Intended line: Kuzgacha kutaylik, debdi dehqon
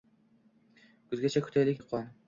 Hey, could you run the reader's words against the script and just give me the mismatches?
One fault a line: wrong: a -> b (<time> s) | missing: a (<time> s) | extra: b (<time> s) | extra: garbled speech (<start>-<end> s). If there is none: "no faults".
missing: debdi (1.8 s)